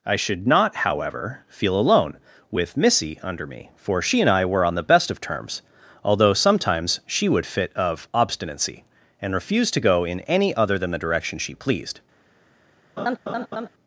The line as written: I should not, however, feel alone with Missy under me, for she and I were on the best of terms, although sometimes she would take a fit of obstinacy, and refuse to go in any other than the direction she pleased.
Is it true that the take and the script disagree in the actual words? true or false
true